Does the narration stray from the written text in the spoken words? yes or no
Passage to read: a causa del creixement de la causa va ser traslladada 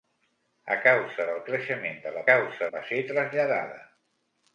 no